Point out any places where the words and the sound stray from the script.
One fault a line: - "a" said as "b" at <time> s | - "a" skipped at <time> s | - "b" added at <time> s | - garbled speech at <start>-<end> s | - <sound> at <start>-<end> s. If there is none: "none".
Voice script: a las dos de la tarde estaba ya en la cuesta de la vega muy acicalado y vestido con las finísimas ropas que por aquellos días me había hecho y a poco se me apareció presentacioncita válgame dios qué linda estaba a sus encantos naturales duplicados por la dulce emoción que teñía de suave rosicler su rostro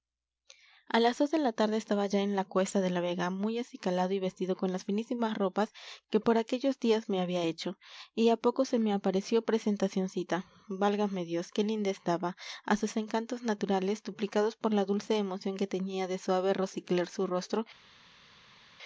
none